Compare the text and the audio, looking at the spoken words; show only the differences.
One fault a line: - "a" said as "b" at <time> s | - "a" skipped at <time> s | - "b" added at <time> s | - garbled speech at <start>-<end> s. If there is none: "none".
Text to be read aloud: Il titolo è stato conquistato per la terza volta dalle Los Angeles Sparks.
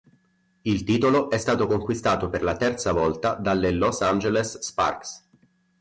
none